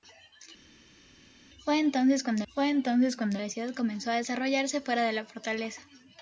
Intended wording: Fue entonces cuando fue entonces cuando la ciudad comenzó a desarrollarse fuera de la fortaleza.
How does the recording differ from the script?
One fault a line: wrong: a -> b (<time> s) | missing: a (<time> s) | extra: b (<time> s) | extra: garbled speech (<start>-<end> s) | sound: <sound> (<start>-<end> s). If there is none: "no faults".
no faults